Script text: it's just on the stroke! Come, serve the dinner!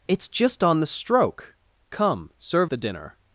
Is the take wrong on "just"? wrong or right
right